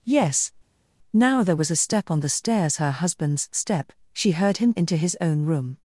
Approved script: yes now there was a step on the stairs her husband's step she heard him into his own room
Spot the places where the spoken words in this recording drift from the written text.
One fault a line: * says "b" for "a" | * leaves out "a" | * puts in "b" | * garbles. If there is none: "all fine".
all fine